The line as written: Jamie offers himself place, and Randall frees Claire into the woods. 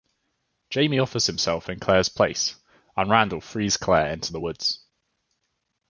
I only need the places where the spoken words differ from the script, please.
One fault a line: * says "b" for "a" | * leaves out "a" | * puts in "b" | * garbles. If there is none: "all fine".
* puts in "in Claire's"